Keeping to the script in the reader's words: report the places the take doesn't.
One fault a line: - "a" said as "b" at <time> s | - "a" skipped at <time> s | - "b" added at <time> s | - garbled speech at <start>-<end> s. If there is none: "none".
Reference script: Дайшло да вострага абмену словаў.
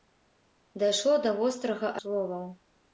- "абмену" skipped at 1.9 s